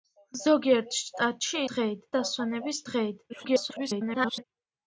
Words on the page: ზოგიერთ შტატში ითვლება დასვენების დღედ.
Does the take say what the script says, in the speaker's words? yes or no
no